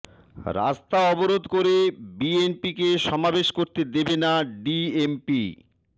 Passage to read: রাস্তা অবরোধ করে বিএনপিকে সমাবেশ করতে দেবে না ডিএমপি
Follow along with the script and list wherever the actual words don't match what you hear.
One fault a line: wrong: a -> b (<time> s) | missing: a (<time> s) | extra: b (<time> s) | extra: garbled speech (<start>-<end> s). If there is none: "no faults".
no faults